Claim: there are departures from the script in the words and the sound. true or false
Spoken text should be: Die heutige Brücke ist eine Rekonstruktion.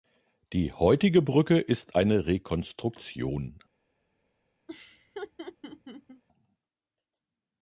true